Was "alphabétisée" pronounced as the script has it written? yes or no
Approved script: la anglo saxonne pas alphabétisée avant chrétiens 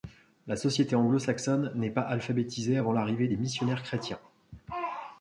yes